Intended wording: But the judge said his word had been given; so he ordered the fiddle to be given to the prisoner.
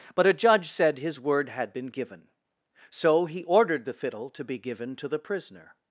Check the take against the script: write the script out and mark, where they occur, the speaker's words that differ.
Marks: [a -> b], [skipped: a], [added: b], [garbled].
But [the -> a] judge said his word had been given; so he ordered the fiddle to be given to the prisoner.